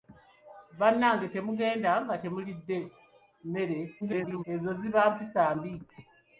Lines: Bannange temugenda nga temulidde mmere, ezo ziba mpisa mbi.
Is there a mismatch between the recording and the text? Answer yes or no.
yes